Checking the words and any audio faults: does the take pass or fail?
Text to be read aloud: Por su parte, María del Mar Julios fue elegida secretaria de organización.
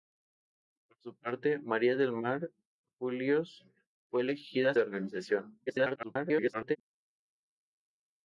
fail